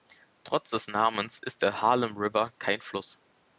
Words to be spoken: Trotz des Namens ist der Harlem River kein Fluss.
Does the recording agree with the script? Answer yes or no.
yes